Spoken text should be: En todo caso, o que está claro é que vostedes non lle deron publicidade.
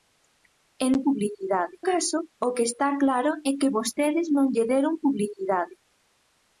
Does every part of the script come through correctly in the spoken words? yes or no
no